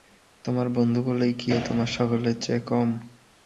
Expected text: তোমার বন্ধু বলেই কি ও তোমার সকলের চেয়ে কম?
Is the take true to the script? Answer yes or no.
yes